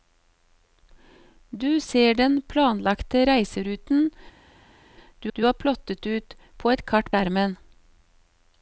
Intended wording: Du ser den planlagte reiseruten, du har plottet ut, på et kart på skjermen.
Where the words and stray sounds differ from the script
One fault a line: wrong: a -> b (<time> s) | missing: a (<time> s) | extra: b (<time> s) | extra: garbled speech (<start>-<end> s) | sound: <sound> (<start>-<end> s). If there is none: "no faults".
extra: du (5.3 s)
missing: på (7.1 s)